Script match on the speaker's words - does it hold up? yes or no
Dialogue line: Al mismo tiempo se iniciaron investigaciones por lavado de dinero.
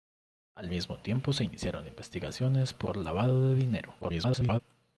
no